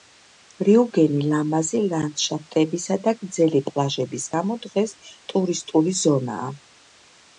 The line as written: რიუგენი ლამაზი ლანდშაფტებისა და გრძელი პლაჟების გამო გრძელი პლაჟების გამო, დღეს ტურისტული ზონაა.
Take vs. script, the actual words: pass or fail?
fail